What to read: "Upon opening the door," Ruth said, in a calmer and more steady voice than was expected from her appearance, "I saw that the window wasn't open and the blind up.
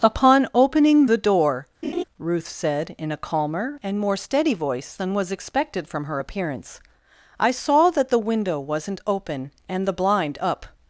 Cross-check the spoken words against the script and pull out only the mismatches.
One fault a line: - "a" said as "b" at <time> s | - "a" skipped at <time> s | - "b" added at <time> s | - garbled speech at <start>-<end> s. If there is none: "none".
none